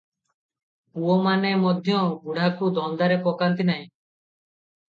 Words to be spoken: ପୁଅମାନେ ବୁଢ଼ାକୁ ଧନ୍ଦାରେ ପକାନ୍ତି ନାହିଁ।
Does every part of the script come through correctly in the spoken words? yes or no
no